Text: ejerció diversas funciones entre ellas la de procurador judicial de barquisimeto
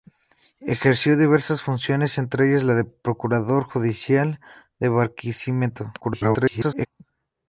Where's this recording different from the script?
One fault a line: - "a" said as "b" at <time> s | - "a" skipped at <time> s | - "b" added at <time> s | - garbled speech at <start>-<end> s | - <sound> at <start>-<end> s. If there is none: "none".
- garbled speech at 6.0-6.9 s